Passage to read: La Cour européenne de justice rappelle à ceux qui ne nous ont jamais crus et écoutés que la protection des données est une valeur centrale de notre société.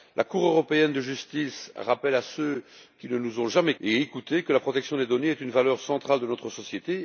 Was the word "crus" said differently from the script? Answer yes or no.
yes